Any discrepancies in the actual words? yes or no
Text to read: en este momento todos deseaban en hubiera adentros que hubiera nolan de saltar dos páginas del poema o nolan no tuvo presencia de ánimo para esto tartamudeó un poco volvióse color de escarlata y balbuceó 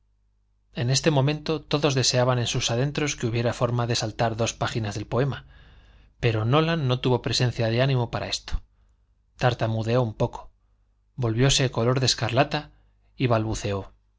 yes